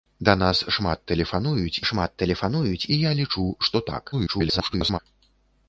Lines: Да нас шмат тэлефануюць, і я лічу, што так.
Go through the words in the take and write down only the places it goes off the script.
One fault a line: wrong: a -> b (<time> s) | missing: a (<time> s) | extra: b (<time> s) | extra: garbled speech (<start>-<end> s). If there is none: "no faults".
extra: шмат тэлефануюць (1.9 s)
extra: garbled speech (4.1-5.0 s)